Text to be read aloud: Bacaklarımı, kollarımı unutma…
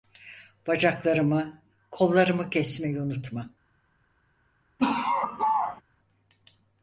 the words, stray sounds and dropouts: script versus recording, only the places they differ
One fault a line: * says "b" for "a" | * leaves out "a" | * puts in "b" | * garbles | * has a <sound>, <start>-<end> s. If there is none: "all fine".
* puts in "kesmeyi"
* has a laugh, 4.8-5.8 s